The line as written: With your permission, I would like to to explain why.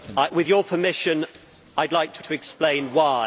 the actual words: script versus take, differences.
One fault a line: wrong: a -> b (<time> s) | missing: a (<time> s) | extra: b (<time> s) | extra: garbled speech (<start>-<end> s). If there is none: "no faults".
no faults